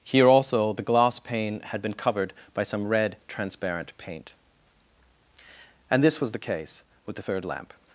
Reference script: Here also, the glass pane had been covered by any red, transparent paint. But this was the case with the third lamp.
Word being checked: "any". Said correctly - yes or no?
no